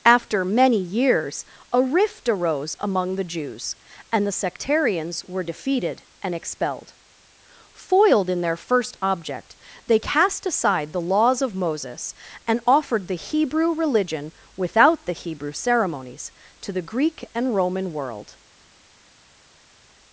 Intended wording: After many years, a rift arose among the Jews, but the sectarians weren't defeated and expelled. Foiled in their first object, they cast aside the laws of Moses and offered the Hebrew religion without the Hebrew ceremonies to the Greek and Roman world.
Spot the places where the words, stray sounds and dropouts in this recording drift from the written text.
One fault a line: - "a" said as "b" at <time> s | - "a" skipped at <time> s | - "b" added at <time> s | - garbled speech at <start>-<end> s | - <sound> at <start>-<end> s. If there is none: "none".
- "but" said as "and" at 4.1 s
- "weren't" said as "were" at 5.2 s